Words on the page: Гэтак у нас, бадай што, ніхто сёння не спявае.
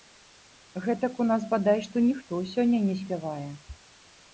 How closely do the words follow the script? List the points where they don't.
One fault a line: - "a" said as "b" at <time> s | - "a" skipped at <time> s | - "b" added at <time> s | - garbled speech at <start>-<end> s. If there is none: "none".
none